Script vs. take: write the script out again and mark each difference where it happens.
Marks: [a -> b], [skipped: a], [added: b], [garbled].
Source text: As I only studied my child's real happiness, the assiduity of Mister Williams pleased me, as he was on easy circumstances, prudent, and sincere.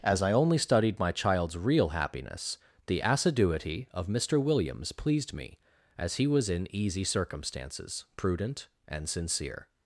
As I only studied my child's real happiness, the assiduity of Mister Williams pleased me, as he was [on -> in] easy circumstances, prudent, and sincere.